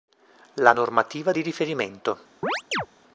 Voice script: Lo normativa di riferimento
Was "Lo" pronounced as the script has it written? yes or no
no